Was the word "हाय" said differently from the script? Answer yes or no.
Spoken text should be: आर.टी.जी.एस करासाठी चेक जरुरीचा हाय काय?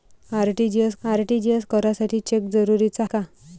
yes